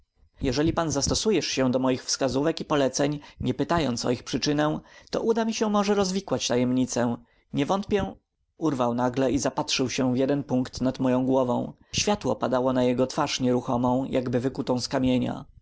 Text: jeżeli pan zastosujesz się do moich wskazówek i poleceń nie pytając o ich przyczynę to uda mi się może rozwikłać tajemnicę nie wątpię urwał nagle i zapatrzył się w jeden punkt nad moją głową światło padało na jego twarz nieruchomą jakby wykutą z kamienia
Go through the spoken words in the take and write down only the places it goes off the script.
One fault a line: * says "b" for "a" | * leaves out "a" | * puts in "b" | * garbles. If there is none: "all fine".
all fine